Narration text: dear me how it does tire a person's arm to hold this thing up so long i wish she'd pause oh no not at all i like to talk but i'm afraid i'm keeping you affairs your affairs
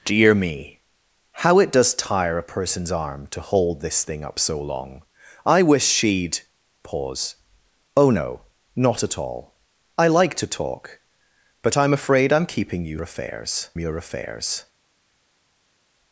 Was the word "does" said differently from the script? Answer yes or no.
no